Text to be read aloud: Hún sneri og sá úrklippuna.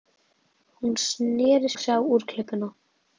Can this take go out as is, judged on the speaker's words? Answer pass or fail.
pass